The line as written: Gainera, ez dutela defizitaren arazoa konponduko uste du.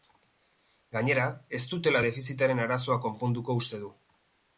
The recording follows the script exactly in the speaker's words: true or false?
true